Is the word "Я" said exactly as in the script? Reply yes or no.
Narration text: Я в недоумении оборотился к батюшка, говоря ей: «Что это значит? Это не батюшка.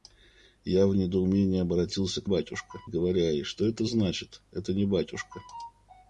yes